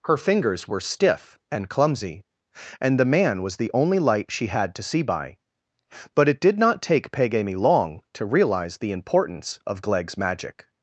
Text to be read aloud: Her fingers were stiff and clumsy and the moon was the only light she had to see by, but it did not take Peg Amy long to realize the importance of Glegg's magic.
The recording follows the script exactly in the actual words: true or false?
false